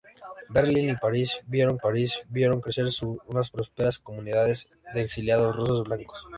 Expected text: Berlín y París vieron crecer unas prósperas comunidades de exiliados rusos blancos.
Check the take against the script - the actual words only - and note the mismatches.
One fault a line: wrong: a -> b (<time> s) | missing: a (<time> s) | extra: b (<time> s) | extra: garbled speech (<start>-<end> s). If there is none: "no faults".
extra: París vieron (1.8 s)